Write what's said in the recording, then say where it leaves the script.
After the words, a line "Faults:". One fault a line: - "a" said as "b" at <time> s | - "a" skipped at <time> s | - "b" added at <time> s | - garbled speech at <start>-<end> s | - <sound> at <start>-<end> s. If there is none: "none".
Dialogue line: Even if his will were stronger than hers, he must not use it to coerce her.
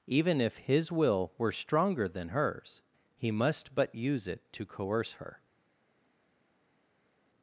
Even if his will were stronger than hers, he must but use it to coerce her.
Faults:
- "not" said as "but" at 3.8 s